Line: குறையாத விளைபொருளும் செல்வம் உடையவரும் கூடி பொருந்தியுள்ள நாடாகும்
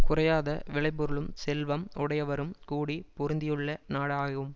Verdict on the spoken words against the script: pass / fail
pass